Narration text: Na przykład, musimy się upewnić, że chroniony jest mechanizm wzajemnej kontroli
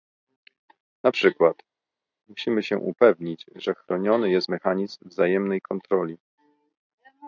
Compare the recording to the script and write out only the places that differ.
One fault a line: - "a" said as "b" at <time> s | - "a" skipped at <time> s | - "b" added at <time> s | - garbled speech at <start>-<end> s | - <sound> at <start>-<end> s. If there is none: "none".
none